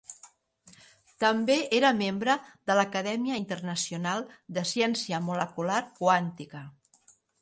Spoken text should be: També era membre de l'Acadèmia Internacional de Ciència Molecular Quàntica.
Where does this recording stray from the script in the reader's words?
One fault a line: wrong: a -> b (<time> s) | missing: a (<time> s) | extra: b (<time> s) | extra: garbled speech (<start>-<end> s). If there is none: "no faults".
no faults